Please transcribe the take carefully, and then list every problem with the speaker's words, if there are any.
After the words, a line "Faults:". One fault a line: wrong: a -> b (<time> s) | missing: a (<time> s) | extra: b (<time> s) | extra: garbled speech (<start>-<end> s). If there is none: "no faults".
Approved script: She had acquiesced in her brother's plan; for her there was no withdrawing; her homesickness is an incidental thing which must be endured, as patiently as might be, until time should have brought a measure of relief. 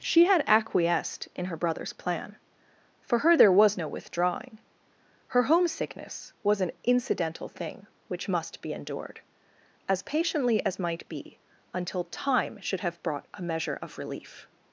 She had acquiesced in her brother's plan; for her there was no withdrawing; her homesickness was an incidental thing which must be endured, as patiently as might be, until time should have brought a measure of relief.
Faults:
wrong: is -> was (6.4 s)